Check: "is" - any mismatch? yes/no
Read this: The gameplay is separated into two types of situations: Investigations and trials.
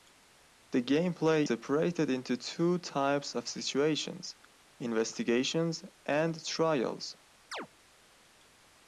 yes